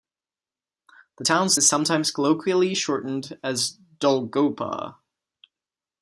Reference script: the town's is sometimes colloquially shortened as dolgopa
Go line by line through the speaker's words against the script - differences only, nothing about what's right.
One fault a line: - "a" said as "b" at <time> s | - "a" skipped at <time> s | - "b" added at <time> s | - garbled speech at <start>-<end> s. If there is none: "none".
none